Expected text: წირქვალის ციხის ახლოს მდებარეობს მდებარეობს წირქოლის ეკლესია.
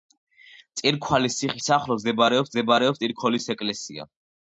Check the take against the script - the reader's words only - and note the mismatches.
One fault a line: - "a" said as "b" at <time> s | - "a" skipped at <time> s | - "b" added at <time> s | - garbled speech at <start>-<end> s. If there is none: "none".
none